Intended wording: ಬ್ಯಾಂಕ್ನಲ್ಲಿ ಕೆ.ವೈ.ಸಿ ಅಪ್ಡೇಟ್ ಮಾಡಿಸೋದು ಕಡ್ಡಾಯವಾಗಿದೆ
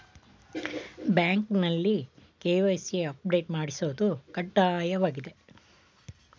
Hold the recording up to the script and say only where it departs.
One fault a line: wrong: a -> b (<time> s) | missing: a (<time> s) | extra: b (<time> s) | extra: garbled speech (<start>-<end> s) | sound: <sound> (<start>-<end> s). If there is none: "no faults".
no faults